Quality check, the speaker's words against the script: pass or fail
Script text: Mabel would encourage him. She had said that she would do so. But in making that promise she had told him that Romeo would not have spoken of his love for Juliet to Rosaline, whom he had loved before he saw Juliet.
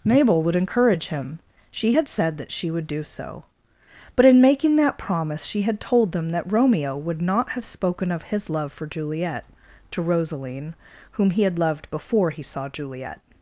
fail